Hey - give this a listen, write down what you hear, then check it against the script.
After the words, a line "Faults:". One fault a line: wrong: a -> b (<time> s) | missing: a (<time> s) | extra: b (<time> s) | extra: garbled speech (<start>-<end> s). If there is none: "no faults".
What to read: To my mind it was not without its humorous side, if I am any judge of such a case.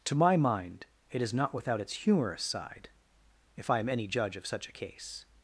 To my mind it is not without its humorous side, if I am any judge of such a case.
Faults:
wrong: was -> is (1.2 s)